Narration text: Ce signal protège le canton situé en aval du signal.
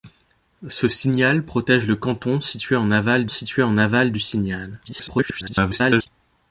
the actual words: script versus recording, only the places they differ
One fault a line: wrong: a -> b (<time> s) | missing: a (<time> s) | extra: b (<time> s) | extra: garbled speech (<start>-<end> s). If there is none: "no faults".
extra: situé en aval (3.3 s)
extra: garbled speech (4.9-6.1 s)